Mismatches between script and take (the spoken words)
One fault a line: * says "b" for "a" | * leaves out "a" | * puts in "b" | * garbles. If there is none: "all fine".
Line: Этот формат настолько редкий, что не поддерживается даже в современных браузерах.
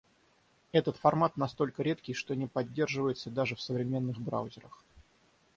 all fine